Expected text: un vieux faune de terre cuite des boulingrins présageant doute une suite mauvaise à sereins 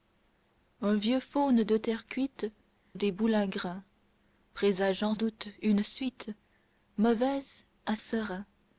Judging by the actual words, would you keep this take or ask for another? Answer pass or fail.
pass